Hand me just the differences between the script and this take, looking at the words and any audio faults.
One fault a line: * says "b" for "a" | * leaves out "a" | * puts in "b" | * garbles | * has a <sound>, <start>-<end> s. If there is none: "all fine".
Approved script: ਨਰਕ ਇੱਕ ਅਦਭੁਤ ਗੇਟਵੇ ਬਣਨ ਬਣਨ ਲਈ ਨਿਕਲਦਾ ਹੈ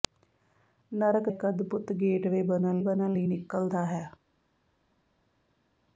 all fine